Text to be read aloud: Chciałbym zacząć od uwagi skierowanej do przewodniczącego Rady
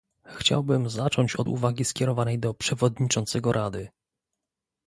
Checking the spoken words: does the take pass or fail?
pass